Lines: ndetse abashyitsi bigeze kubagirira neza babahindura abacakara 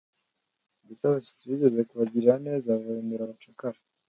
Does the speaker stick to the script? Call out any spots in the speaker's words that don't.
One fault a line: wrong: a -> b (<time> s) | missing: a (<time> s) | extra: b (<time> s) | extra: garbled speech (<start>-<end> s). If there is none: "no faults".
no faults